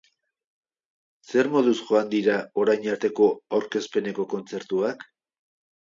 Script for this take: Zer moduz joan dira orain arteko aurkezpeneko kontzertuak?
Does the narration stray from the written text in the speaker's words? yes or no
no